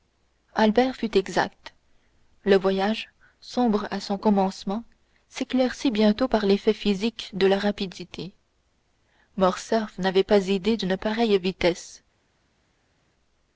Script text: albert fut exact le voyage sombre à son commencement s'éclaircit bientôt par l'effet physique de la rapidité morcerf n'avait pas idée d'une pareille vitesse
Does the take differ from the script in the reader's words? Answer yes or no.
no